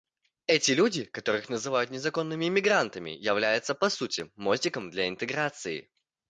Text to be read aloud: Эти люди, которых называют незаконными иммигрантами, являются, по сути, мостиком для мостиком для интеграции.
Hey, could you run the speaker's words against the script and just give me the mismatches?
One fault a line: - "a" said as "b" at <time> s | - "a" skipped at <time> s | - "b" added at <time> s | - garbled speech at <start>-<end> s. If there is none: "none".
- "мостиком для" skipped at 5.1 s